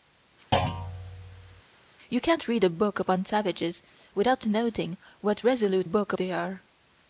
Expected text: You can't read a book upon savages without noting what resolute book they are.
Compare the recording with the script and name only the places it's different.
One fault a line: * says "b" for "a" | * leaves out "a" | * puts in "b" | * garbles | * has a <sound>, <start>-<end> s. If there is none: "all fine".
* has a thud, 0.5-1.6 s